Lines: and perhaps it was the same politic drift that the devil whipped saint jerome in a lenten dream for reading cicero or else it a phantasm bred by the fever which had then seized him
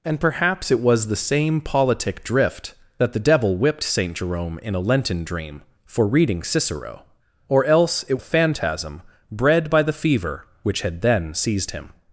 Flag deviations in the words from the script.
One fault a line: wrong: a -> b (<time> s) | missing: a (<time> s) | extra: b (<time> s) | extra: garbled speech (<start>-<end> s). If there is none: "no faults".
no faults